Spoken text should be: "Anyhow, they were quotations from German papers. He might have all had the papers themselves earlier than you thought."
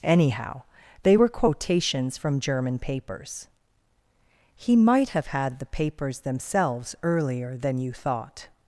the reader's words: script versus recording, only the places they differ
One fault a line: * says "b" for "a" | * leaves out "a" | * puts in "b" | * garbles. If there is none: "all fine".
* leaves out "all"